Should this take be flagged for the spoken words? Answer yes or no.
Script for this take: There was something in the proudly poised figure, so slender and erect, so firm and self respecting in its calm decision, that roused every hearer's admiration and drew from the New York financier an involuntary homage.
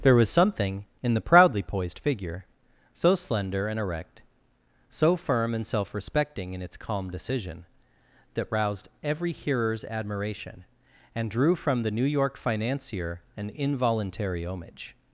no